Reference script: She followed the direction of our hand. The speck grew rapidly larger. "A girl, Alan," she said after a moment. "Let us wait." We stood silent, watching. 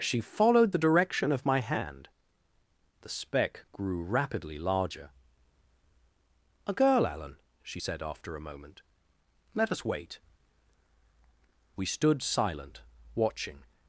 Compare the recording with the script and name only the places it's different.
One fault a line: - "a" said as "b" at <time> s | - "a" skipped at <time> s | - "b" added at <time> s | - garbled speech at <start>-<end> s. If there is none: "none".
- "our" said as "my" at 1.4 s